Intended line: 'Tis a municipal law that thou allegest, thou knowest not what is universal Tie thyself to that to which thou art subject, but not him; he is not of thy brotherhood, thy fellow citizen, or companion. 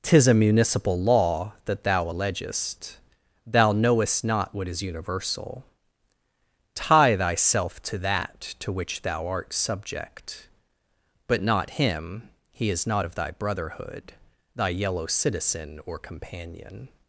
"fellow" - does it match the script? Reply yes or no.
no